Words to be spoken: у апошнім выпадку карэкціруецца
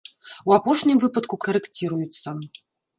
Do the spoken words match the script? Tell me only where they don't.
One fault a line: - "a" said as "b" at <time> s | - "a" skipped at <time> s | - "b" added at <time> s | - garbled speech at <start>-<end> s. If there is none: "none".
none